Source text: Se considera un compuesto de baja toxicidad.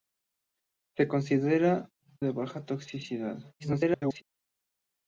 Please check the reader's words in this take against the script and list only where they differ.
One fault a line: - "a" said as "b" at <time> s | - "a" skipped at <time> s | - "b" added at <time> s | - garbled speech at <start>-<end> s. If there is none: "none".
- "un compuesto" skipped at 1.9 s
- garbled speech at 3.6-4.2 s